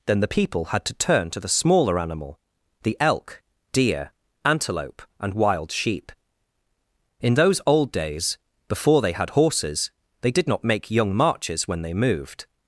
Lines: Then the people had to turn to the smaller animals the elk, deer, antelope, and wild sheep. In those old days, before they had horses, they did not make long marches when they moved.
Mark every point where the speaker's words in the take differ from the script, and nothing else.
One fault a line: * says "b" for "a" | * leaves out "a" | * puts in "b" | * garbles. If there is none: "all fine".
* says "animal" for "animals"
* says "young" for "long"